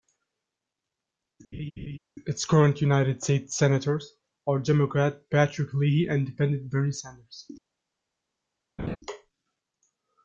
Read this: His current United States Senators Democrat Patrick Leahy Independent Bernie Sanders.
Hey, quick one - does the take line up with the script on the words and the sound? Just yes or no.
no